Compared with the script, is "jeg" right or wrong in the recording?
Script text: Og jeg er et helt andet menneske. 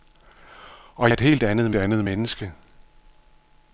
wrong